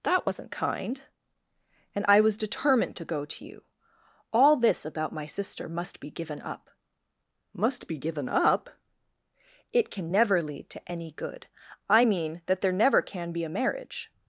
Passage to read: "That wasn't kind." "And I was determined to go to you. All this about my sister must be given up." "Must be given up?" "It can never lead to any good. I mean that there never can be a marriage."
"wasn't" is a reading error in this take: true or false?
false